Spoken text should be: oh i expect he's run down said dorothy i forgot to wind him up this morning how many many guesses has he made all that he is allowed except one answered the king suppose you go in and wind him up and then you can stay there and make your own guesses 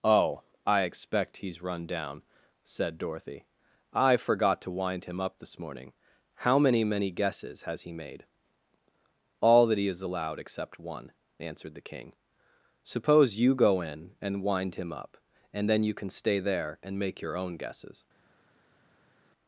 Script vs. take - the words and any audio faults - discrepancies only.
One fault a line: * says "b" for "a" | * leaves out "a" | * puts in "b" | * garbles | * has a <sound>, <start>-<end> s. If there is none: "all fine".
all fine